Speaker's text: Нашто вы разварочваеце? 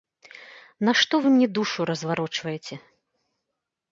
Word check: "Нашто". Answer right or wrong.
right